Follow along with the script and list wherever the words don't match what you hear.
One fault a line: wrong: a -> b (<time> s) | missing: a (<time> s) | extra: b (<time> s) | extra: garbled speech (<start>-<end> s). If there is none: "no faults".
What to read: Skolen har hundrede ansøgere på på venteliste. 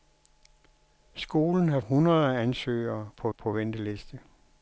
no faults